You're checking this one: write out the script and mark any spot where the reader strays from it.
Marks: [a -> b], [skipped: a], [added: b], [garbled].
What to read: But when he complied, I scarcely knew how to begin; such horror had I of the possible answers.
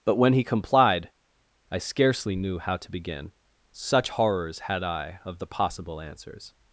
But when he complied, I scarcely knew how to begin; such [horror -> horrors] had I of the possible answers.